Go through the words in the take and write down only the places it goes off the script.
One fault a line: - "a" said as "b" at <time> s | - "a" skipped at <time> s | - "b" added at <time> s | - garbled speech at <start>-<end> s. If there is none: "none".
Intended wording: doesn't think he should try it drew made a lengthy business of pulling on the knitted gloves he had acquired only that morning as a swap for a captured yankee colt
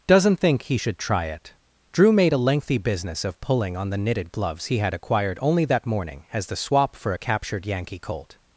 - "a" said as "the" at 6.5 s